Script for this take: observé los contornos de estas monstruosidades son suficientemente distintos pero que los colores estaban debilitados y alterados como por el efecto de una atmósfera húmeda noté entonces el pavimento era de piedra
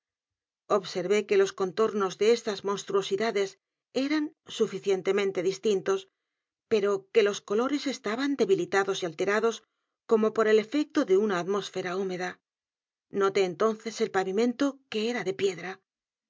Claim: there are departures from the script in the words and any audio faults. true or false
true